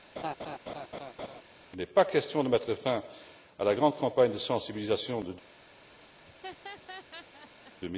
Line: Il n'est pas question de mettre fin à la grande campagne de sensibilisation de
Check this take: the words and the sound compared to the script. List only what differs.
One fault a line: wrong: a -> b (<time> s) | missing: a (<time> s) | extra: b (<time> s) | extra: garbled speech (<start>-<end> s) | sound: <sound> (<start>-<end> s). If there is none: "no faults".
sound: laugh (0.2-1.4 s)
sound: laugh (6.2-7.7 s)